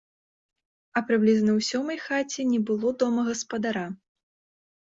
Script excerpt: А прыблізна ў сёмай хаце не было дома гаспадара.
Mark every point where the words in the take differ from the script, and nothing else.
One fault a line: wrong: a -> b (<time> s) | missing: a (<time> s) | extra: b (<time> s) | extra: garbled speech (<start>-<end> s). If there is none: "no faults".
no faults